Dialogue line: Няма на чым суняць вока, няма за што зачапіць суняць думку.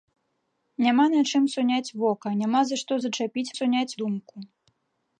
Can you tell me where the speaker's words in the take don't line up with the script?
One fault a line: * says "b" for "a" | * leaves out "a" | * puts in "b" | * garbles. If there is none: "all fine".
all fine